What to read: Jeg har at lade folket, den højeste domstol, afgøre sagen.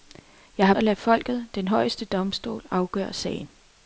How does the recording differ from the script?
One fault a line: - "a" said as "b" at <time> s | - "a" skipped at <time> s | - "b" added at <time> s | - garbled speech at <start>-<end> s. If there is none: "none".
none